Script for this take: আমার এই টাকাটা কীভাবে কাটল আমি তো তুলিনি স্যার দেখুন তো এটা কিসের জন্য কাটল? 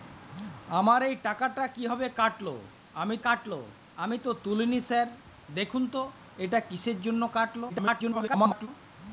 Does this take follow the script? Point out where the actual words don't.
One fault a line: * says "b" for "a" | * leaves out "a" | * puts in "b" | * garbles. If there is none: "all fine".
* puts in "কাটল আমি"
* garbles